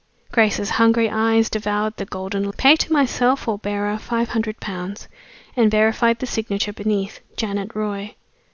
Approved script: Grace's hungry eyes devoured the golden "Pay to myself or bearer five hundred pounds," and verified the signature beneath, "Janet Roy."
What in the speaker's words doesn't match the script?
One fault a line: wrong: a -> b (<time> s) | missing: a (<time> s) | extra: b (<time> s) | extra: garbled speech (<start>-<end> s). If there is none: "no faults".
no faults